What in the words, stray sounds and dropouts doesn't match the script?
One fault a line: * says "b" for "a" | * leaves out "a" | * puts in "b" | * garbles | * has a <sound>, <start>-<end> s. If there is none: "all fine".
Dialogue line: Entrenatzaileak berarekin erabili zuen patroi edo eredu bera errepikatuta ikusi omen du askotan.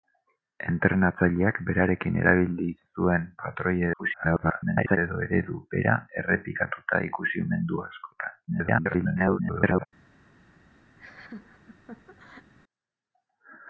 * garbles
* garbles
* has a laugh, 11.0-12.5 s